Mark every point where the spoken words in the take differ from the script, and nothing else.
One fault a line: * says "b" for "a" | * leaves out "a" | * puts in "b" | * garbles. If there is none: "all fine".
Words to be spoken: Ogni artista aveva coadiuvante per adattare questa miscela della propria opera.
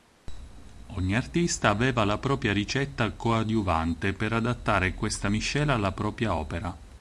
* puts in "la propria ricetta"
* says "alla" for "della"